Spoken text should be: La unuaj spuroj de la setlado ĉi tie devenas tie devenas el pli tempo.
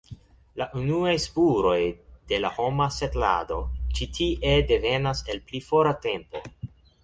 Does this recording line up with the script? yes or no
no